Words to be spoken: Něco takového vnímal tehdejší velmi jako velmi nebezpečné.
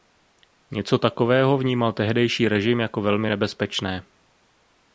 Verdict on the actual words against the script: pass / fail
fail